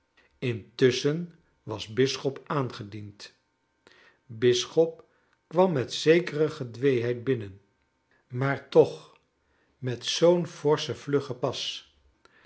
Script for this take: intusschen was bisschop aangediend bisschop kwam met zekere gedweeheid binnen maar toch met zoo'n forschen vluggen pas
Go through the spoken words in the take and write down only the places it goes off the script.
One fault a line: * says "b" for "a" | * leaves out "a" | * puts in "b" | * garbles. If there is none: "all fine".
all fine